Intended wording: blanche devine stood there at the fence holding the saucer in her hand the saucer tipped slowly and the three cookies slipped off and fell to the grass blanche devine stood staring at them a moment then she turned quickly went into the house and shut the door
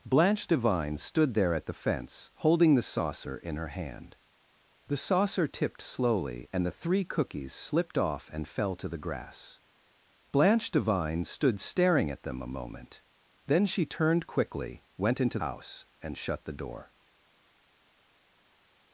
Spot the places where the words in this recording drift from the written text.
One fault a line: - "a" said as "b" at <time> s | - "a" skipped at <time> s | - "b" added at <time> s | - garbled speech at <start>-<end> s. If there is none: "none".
- "the" skipped at 15.4 s